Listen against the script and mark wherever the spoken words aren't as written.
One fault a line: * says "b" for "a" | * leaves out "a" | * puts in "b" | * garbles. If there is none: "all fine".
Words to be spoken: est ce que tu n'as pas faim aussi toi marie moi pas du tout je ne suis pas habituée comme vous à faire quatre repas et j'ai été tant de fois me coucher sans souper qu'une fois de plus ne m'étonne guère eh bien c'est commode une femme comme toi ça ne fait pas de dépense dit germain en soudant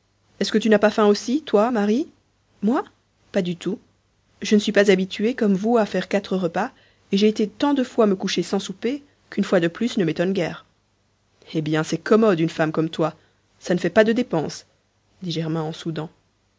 all fine